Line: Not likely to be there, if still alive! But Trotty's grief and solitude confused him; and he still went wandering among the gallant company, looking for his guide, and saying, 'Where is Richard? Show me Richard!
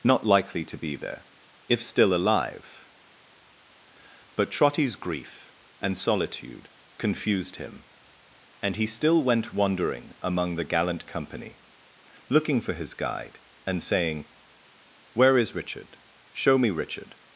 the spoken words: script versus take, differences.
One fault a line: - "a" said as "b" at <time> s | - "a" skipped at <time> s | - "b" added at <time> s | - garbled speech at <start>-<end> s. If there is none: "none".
none